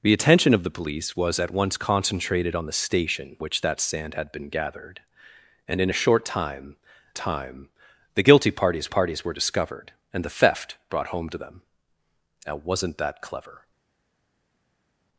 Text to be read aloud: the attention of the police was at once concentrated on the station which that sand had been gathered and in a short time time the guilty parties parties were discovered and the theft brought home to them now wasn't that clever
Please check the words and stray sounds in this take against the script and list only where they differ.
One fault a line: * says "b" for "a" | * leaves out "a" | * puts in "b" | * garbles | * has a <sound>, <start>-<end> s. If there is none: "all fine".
all fine